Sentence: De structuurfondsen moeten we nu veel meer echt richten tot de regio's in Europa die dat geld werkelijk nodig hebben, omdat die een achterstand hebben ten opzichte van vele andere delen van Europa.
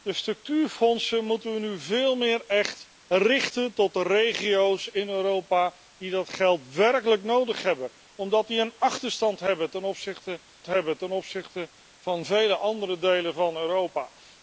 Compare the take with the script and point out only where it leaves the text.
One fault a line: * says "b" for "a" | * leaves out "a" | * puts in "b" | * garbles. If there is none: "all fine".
* puts in "hebben ten opzichte"